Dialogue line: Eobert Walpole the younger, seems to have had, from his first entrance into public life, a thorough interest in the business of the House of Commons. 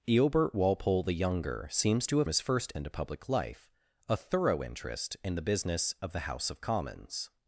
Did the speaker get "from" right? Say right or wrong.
wrong